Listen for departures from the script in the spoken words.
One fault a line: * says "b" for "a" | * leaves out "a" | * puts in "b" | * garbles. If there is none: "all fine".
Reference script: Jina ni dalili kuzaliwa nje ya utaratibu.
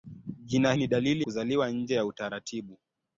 all fine